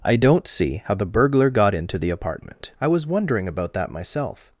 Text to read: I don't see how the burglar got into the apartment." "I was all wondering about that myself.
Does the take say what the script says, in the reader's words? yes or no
no